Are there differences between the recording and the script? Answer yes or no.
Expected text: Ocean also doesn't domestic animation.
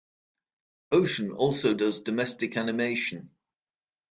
yes